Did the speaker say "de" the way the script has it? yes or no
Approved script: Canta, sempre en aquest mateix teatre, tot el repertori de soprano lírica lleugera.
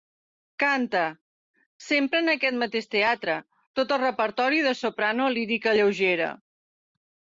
yes